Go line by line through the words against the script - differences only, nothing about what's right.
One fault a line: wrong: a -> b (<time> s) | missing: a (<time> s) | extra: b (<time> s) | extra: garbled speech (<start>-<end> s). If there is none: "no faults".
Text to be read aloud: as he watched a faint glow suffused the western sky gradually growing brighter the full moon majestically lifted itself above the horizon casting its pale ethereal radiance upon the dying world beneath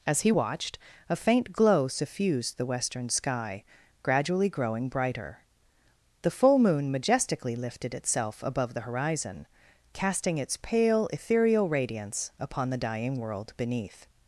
no faults